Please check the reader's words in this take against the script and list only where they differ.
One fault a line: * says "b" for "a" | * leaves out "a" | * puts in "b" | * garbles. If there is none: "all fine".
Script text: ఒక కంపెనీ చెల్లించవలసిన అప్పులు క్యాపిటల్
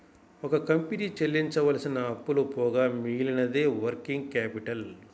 * puts in "పోగా మిగిలినదే వర్కింగ్"